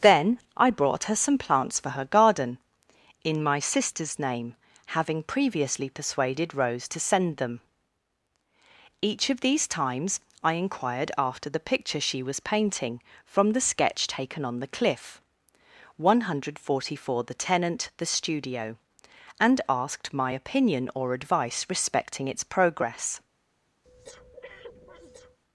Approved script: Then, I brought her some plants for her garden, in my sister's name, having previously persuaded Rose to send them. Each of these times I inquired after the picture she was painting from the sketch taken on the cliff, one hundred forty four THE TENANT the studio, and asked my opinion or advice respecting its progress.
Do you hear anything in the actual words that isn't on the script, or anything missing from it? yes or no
no